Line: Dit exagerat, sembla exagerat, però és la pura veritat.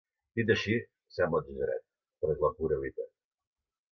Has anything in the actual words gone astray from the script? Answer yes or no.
yes